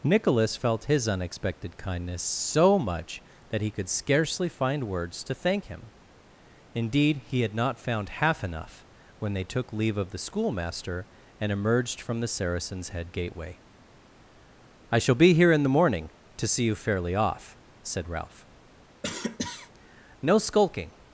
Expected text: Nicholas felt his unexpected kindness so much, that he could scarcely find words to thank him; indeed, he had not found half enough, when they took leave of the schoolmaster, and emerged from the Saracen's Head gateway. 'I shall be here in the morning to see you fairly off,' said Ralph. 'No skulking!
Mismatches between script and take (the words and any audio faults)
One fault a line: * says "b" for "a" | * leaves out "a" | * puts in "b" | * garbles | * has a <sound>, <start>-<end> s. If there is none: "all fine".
* has a cough, 19.0-19.7 s